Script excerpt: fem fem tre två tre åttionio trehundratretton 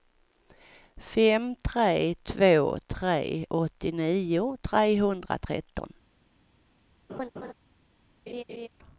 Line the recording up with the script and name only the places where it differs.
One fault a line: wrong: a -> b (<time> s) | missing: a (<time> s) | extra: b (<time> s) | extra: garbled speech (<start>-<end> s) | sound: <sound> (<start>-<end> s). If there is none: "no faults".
missing: fem (1.6 s)
sound: laugh (7.1-7.5 s)
sound: laugh (8.3-8.7 s)